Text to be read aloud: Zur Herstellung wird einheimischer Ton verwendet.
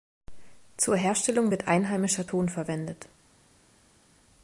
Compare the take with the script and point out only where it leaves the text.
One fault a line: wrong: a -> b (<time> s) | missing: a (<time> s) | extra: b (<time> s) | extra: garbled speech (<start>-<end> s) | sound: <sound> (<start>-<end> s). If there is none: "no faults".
no faults